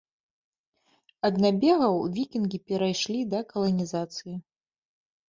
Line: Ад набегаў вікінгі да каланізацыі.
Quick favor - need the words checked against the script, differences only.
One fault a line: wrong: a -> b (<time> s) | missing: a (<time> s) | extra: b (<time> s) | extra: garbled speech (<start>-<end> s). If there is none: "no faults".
extra: перайшлі (2.7 s)